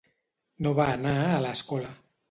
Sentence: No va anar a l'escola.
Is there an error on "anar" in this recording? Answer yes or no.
no